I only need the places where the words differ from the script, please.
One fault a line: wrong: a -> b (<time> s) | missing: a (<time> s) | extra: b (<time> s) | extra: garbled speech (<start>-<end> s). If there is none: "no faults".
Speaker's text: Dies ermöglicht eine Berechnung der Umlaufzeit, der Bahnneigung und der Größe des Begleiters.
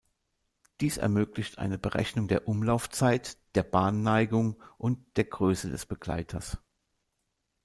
no faults